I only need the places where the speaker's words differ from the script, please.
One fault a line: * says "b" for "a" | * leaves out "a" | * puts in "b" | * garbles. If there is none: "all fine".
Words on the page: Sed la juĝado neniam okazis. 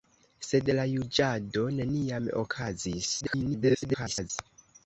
* garbles